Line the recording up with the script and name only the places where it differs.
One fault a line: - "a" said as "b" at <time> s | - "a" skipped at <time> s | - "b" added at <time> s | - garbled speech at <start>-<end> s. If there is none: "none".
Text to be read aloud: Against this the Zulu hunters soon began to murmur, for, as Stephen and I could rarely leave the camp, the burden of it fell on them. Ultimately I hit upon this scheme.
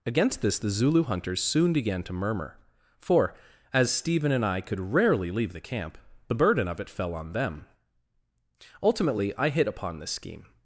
none